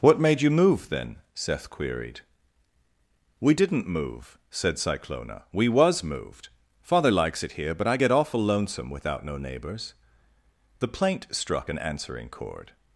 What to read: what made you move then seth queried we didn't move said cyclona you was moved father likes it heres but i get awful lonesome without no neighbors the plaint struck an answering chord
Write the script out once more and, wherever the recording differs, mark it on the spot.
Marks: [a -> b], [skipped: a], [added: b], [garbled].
what made you move then seth queried we didn't move said cyclona [you -> we] was moved father likes it [heres -> here] but i get awful lonesome without no neighbors the plaint struck an answering chord